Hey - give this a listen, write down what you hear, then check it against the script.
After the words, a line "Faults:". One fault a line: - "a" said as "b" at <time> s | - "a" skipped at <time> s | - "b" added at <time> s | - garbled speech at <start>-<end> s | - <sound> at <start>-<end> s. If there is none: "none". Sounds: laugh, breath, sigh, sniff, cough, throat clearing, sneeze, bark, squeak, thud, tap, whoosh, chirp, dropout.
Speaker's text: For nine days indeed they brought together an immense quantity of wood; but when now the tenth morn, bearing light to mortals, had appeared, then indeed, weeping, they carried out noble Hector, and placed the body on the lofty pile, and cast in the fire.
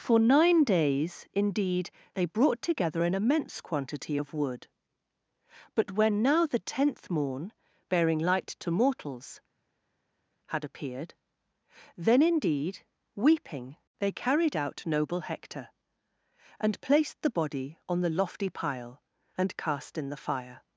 For nine days indeed they brought together an immense quantity of wood; but when now the tenth morn, bearing light to mortals, had appeared, then indeed, weeping, they carried out noble Hector, and placed the body on the lofty pile, and cast in the fire.
Faults:
none